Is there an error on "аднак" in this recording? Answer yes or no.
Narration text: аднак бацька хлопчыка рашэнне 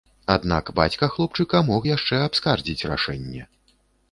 no